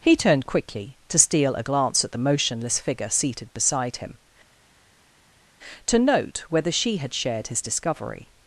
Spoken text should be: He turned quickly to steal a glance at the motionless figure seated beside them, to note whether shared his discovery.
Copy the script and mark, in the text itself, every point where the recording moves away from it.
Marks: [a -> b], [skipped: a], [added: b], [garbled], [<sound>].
He turned quickly to steal a glance at the motionless figure seated beside [them, -> him] to note whether [added: she had] shared his discovery.